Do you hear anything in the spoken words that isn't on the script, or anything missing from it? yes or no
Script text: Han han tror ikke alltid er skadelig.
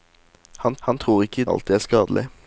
no